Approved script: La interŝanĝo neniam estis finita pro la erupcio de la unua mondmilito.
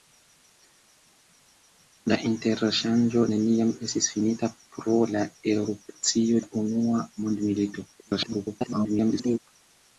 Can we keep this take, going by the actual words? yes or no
no